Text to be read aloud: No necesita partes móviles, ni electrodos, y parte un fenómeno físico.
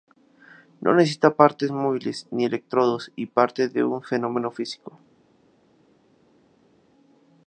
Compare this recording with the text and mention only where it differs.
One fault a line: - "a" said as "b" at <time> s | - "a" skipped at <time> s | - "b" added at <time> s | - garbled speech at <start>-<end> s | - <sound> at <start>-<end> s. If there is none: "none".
- "de" added at 3.7 s